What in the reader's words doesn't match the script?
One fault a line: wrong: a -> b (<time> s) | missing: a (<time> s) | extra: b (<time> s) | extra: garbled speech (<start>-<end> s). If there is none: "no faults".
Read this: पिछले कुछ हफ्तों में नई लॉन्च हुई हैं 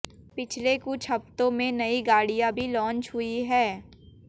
extra: गाड़ियां भी (2.0 s)